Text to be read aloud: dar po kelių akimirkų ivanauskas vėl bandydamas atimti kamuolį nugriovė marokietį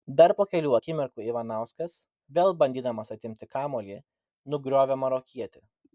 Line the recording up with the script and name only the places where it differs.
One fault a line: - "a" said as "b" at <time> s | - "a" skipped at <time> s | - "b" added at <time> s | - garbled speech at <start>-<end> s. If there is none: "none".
none